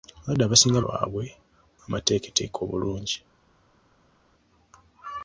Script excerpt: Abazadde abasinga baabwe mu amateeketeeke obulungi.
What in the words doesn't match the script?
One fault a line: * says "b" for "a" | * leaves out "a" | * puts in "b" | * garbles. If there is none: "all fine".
all fine